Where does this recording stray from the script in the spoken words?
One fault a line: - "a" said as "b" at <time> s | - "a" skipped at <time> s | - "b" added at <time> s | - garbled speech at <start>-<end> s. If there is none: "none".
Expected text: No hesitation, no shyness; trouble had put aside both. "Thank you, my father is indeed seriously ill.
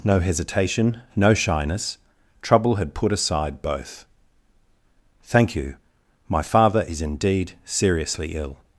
none